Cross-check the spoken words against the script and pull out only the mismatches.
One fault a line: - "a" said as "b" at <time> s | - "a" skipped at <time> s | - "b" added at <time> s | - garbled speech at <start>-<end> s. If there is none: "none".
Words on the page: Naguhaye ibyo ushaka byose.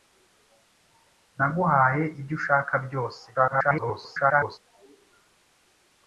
- garbled speech at 3.3-4.6 s